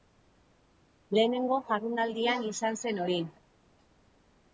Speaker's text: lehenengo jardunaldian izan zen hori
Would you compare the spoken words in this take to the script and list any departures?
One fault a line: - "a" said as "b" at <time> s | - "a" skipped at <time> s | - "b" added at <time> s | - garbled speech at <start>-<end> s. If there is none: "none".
none